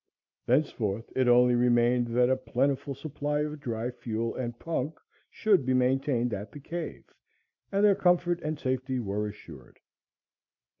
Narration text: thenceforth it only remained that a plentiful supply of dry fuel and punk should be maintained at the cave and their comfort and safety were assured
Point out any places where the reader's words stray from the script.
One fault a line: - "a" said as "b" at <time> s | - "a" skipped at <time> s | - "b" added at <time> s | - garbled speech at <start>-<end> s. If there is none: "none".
none